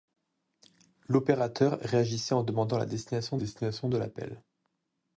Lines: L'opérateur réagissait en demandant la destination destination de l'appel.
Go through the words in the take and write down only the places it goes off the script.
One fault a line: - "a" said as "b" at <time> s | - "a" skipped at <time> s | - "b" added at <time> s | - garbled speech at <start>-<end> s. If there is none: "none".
none